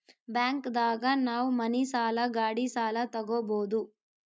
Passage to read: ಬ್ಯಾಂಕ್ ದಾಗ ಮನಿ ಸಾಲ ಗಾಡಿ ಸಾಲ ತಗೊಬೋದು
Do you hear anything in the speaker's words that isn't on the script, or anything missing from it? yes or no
yes